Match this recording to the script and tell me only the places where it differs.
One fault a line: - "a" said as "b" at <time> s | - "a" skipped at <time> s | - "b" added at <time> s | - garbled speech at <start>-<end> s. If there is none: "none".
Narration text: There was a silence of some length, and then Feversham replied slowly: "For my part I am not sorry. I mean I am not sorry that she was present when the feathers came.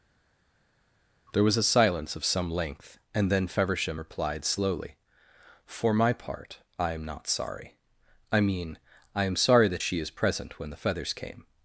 - "not" skipped at 9.4 s
- "was" said as "is" at 10.0 s